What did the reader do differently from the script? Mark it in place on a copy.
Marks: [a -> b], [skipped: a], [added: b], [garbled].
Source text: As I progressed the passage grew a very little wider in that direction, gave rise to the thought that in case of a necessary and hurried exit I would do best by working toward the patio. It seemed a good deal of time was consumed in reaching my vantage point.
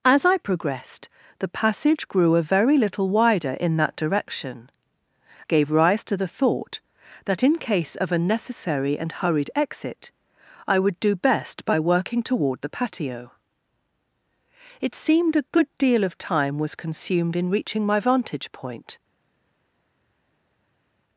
As I progressed the passage grew a very little wider in that direction, gave rise to the thought that in case of a necessary and hurried exit I would do best by working toward the patio. It seemed a good deal of time was consumed in reaching my vantage point.